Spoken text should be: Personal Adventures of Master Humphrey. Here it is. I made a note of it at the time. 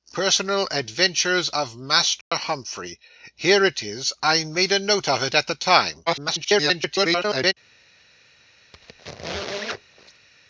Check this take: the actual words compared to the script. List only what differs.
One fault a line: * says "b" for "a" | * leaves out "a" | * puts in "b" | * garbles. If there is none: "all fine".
* garbles